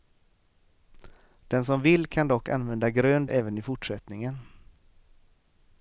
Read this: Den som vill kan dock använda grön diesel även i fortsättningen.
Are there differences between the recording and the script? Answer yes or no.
yes